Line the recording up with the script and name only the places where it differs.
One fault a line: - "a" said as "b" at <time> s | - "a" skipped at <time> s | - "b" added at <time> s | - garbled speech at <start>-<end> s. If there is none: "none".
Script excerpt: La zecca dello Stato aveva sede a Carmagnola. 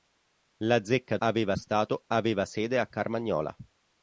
- "dello" said as "aveva" at 1.2 s